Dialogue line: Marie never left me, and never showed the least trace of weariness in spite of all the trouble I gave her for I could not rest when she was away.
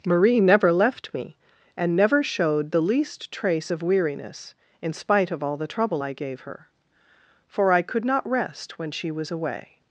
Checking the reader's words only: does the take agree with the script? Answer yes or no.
yes